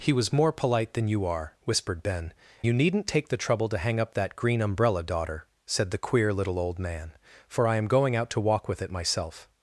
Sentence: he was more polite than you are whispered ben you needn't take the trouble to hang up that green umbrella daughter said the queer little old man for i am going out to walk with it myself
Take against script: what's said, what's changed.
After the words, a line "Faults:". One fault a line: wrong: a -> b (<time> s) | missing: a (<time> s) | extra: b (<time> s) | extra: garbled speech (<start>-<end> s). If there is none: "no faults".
he was more polite than you are whispered ben you needn't take the trouble to hang up that green umbrella daughter said the queer little old man for i am going out to walk with it myself
Faults:
no faults